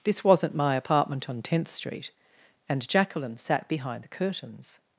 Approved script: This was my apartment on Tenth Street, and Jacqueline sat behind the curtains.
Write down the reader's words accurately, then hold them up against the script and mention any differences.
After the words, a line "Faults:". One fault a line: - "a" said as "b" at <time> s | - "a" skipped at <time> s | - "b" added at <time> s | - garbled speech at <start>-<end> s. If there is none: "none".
This wasn't my apartment on Tenth Street, and Jacqueline sat behind the curtains.
Faults:
- "was" said as "wasn't" at 0.2 s